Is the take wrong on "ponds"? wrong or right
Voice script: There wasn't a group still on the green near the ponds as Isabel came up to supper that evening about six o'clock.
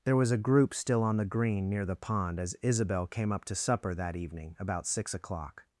wrong